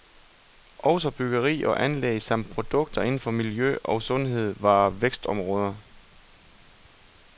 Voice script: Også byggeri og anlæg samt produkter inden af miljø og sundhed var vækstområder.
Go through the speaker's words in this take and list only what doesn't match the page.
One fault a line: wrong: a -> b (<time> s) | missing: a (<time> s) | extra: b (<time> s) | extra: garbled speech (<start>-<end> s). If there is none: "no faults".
wrong: af -> for (3.2 s)